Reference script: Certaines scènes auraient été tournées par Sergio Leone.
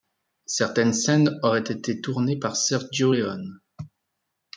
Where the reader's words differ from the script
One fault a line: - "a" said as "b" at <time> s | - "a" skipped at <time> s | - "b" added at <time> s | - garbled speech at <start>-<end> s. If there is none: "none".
none